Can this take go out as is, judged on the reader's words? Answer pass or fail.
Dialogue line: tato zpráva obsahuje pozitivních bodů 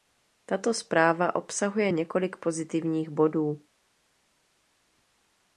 fail